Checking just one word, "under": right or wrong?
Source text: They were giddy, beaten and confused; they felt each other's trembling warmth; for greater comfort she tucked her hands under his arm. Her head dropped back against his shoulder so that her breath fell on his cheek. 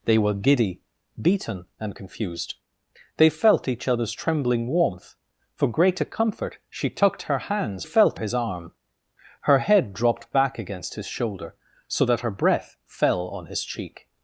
wrong